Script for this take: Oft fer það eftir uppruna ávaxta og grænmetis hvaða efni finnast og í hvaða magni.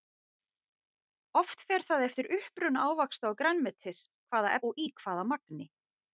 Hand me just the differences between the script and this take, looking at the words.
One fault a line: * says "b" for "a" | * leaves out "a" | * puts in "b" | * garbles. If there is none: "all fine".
* leaves out "efni finnast"